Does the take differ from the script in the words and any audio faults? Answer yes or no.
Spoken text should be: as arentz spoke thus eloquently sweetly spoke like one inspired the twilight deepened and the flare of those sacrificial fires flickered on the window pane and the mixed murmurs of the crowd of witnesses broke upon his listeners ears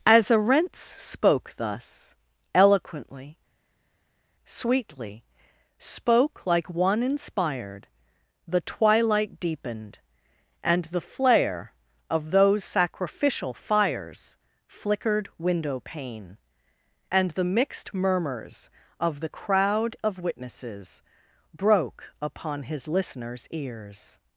yes